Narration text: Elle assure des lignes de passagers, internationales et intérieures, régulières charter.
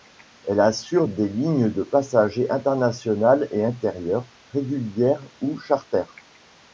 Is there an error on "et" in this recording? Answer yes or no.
no